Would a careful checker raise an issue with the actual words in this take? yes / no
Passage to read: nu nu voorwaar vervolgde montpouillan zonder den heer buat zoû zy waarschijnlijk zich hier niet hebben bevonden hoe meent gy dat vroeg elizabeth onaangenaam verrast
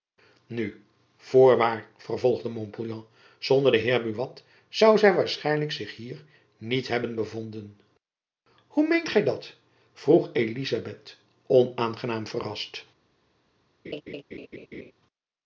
yes